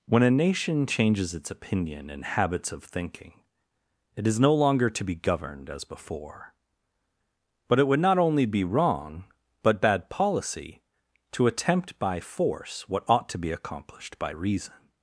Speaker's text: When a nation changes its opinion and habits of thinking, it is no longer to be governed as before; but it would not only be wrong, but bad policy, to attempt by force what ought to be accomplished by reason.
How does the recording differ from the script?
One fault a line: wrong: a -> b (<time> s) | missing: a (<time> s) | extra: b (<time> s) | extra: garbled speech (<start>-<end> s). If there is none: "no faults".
no faults